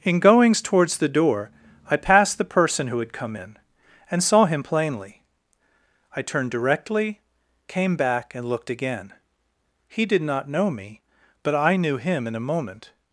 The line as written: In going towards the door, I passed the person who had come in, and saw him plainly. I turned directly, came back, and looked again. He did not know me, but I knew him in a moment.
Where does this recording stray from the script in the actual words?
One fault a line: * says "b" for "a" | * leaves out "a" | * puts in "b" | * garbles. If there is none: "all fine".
* says "goings" for "going"